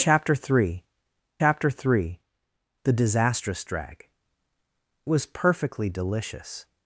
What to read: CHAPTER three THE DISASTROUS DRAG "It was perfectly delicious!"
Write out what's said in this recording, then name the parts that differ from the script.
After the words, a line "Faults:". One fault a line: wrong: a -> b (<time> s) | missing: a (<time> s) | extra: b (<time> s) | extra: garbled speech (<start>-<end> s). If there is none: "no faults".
CHAPTER three chapter three THE DISASTROUS DRAG "Was perfectly delicious!"
Faults:
extra: chapter three (1.4 s)
missing: It (4.1 s)